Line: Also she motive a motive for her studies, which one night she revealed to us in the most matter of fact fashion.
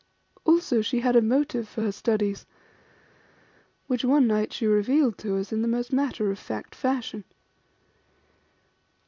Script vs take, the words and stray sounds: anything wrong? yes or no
yes